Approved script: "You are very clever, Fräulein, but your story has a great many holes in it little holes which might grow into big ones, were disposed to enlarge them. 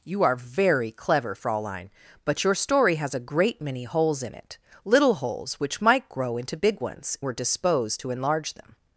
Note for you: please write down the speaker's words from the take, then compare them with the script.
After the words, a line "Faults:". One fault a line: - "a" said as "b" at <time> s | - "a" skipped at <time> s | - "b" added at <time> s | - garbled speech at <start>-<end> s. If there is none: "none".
"You are very clever, Fräulein, but your story has a great many holes in it little holes which might grow into big ones, were disposed to enlarge them.
Faults:
none